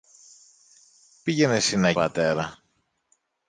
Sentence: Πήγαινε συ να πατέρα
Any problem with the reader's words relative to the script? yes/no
no